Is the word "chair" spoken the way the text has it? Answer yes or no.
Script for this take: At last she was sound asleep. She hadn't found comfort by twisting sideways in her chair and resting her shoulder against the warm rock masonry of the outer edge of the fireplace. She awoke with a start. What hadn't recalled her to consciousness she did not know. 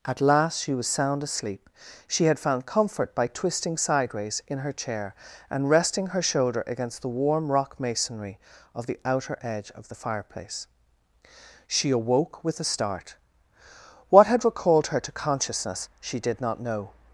yes